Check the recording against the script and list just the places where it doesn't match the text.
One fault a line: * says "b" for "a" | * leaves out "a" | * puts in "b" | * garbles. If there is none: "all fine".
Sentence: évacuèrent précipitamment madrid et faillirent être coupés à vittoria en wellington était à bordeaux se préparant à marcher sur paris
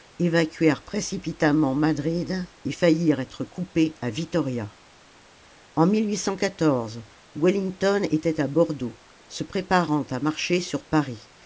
all fine